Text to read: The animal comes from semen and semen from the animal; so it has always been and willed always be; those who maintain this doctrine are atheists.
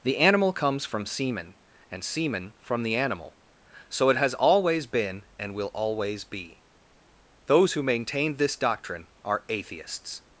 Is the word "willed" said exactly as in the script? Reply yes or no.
no